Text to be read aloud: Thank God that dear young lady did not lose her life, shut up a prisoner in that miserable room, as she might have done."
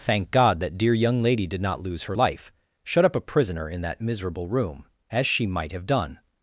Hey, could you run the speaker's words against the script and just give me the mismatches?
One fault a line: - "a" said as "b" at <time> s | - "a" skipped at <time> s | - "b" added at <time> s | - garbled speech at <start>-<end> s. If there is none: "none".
none